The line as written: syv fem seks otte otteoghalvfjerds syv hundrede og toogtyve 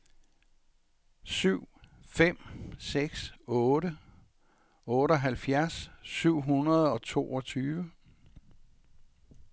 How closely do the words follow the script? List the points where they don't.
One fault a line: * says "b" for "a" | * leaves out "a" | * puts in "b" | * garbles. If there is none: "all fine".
all fine